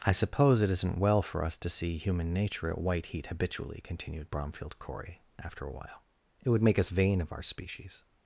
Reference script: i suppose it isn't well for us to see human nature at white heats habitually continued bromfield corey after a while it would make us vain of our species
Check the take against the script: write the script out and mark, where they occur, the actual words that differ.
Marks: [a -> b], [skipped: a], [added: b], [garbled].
i suppose it isn't well for us to see human nature at white [heats -> heat] habitually continued bromfield corey after a while it would make us vain of our species